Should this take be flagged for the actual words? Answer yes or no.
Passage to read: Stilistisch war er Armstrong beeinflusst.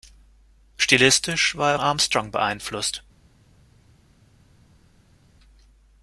no